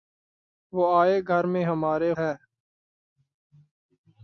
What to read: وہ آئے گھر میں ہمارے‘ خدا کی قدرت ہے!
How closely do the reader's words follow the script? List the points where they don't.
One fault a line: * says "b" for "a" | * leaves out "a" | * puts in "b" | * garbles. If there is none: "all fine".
* leaves out "خدا کی قدرت"